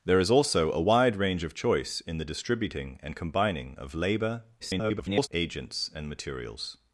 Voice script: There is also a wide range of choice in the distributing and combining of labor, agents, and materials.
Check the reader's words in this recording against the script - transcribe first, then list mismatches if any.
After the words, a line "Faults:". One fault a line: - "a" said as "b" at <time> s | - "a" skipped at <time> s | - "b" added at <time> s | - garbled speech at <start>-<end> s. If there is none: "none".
There is also a wide range of choice in the distributing and combining of labor, [garbled] agents, and materials.
Faults:
- garbled speech at 4.6-5.3 s